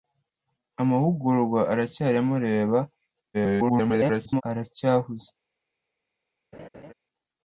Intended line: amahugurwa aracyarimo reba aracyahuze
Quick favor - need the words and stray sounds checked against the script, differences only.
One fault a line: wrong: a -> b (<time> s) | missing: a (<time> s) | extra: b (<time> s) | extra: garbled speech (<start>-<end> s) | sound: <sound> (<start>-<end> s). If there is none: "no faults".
extra: garbled speech (3.3-4.4 s)
sound: laugh (6.5-6.9 s)